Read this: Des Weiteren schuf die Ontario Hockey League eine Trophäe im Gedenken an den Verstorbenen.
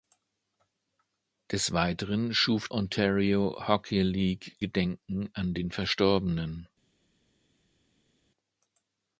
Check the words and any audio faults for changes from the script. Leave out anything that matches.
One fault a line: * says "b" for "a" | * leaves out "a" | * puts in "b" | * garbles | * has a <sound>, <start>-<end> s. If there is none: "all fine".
* leaves out "die"
* leaves out "eine Trophäe im"